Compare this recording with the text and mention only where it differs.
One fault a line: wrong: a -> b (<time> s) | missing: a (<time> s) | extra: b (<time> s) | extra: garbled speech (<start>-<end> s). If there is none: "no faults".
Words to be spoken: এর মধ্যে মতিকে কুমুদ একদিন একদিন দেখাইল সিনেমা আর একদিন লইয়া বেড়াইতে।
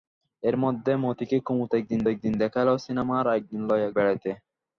no faults